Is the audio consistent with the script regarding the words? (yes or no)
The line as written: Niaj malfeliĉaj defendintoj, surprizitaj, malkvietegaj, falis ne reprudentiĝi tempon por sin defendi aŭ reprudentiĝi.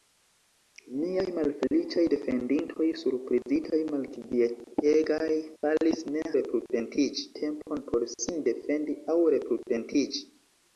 yes